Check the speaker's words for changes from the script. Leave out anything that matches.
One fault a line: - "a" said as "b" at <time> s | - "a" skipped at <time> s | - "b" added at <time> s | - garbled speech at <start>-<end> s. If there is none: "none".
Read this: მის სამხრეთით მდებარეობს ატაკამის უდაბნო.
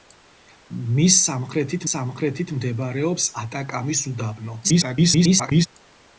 - "სამხრეთით" added at 1.9 s
- garbled speech at 4.6-5.7 s